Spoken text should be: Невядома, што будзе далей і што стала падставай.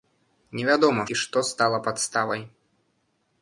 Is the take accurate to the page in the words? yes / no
no